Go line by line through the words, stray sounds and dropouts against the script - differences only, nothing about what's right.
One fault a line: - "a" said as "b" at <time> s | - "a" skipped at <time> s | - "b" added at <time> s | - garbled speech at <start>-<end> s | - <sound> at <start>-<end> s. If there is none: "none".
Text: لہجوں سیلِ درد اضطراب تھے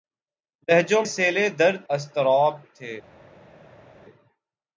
none